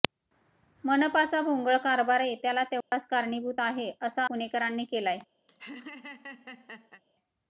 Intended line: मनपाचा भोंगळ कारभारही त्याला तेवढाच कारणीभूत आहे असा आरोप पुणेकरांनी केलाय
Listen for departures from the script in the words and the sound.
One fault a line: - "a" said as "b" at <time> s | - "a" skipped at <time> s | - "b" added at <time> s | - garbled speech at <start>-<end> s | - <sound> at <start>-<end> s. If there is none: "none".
- dropout at 2.8-2.9 s
- "आरोप" skipped at 4.2 s
- laugh at 5.5-7.0 s